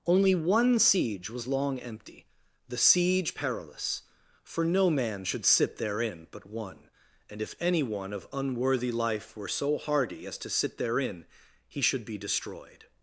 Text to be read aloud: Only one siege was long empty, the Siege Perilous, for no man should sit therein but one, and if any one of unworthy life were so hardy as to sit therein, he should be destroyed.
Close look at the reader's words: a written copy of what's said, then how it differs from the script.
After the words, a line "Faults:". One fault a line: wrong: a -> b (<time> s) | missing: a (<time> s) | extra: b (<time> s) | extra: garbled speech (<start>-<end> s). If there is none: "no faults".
Only one siege was long empty, the Siege Perilous, for no man should sit therein but one, and if any one of unworthy life were so hardy as to sit therein, he should be destroyed.
Faults:
no faults